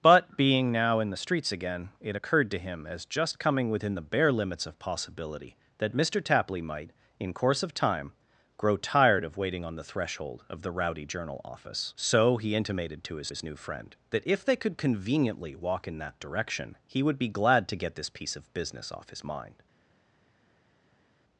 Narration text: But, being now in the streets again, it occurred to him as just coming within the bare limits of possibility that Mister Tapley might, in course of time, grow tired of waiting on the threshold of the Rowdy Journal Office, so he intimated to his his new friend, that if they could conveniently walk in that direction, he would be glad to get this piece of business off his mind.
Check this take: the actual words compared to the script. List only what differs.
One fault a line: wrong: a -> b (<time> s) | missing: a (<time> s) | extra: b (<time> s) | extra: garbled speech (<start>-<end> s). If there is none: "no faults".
no faults